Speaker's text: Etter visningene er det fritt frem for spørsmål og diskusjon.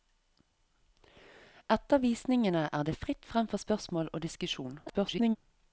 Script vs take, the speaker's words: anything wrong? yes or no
yes